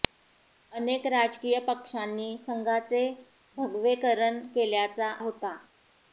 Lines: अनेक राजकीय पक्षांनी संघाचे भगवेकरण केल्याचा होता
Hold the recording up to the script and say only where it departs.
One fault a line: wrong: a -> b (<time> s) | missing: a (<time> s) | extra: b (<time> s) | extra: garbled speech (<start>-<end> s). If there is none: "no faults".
no faults